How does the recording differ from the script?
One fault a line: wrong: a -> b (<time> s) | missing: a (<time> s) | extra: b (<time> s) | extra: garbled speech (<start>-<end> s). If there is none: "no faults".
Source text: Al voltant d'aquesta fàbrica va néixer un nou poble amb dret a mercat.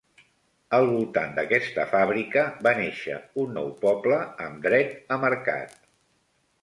no faults